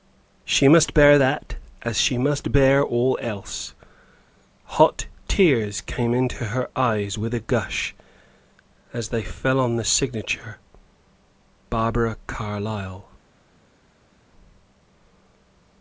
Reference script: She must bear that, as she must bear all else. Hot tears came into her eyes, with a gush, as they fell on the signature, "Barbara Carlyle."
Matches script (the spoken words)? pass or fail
pass